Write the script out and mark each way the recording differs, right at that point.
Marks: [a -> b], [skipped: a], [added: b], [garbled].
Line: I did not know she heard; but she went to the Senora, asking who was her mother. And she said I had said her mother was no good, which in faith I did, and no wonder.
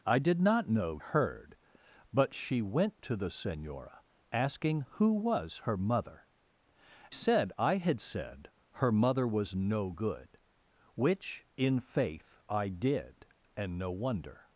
I did not know [skipped: she] heard; but she went to the Senora, asking who was her mother. [skipped: And she] said I had said her mother was no good, which in faith I did, and no wonder.